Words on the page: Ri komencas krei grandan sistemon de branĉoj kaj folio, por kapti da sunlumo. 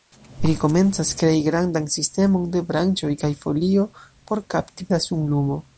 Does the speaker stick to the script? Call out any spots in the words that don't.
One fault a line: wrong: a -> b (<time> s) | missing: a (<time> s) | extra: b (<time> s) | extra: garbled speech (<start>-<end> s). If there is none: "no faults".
no faults